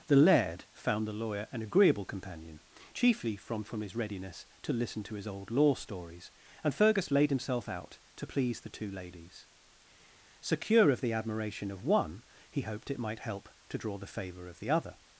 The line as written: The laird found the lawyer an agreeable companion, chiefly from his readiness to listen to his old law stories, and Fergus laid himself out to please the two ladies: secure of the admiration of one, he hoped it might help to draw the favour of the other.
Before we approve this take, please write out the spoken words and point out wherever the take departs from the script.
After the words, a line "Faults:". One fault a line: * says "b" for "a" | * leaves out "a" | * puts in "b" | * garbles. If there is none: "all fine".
The laird found the lawyer an agreeable companion, chiefly from from his readiness to listen to his old law stories, and Fergus laid himself out to please the two ladies: secure of the admiration of one, he hoped it might help to draw the favour of the other.
Faults:
* puts in "from"